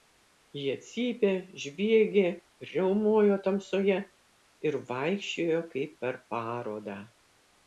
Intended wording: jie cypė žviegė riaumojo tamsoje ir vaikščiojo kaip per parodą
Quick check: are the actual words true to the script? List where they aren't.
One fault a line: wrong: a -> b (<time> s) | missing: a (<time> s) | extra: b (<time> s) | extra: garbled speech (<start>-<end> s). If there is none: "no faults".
no faults